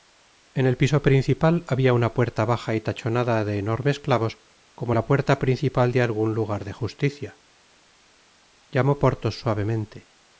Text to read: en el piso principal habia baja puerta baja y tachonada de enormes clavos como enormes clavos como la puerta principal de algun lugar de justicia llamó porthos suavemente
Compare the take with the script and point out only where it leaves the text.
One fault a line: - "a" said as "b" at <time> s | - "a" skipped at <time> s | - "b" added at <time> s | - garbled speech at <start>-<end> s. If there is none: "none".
- "baja" said as "una" at 1.9 s
- "enormes clavos como" skipped at 5.0 s